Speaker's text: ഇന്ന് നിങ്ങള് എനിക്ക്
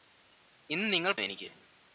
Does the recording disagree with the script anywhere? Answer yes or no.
no